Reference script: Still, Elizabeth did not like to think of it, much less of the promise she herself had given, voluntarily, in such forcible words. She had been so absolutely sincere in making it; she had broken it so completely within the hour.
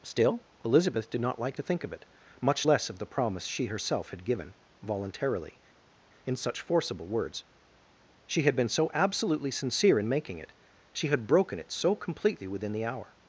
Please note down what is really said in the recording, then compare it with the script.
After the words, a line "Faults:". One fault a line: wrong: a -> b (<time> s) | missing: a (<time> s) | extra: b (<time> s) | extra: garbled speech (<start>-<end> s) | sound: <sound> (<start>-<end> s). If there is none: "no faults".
Still, Elizabeth did not like to think of it, much less of the promise she herself had given, voluntarily, in such forcible words. She had been so absolutely sincere in making it; she had broken it so completely within the hour.
Faults:
no faults